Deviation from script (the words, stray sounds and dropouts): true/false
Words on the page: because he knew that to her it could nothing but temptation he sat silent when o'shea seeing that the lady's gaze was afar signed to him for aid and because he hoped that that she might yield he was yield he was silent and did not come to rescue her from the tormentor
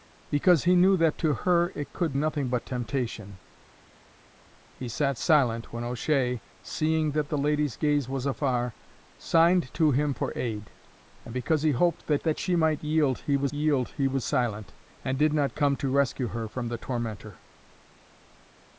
false